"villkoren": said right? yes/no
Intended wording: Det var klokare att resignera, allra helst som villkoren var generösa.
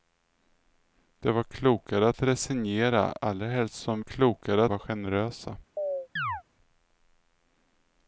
no